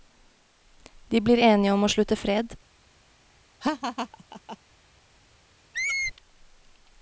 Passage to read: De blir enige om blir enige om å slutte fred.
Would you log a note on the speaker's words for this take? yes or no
yes